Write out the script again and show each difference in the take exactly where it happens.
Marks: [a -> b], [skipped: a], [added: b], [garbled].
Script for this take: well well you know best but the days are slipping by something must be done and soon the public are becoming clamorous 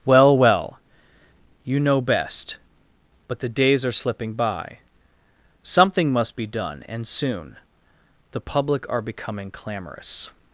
well well you know best but the days are slipping by something must be done and soon the public are becoming clamorous